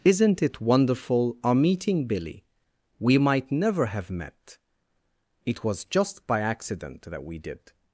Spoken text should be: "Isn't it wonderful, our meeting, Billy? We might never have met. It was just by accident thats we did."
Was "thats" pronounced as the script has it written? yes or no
no